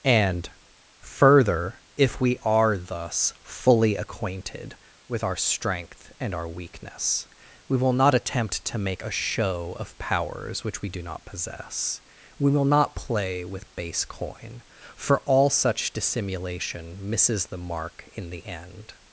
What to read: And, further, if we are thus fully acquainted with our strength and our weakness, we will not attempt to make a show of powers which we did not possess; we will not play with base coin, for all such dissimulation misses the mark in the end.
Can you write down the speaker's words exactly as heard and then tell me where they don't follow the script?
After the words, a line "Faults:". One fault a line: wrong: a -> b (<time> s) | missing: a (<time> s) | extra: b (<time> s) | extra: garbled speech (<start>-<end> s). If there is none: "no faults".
And, further, if we are thus fully acquainted with our strength and our weakness, we will not attempt to make a show of powers which we do not possess; we will not play with base coin, for all such dissimulation misses the mark in the end.
Faults:
wrong: did -> do (10.9 s)